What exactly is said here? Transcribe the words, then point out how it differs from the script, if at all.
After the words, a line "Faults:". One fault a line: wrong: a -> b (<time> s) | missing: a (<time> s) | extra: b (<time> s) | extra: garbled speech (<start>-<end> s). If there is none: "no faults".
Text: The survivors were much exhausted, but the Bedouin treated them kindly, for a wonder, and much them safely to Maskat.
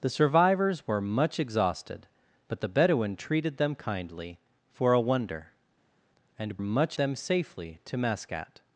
The survivors were much exhausted, but the Bedouin treated them kindly, for a wonder, and much them safely to Maskat.
Faults:
no faults